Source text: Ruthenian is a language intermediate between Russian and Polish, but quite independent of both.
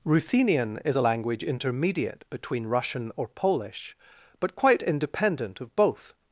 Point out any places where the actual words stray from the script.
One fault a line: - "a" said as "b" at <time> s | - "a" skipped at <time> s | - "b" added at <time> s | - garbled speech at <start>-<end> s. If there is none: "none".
- "and" said as "or" at 3.2 s